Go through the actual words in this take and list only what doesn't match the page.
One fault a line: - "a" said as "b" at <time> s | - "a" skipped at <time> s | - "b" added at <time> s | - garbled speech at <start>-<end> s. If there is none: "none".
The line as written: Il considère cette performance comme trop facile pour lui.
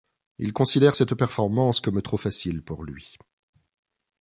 none